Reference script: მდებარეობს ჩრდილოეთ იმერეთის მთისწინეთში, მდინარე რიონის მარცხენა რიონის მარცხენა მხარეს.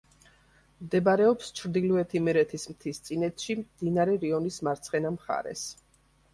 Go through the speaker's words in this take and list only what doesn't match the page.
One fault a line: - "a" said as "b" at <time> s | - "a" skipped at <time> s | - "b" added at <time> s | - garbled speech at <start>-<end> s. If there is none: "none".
- "რიონის მარცხენა" skipped at 5.2 s